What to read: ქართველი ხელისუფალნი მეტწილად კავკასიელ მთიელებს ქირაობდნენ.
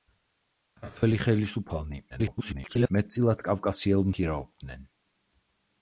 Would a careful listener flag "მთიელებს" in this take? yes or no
yes